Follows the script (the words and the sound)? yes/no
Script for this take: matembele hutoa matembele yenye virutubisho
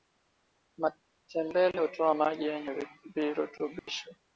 no